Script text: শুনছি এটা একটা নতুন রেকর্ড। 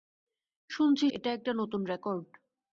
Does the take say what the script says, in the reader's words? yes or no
yes